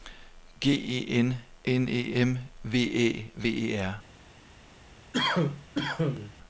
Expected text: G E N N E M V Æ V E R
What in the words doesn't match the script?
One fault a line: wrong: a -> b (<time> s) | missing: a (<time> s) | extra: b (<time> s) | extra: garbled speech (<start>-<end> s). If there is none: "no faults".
no faults